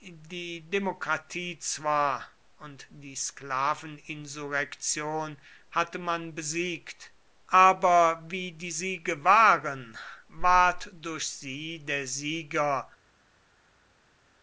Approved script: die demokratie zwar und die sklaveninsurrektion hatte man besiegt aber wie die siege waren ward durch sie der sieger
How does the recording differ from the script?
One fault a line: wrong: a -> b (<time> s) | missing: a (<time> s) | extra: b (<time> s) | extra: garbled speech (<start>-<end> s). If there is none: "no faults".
no faults